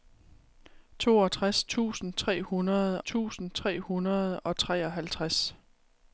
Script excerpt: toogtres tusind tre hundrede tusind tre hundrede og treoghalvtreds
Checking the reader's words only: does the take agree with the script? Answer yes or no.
yes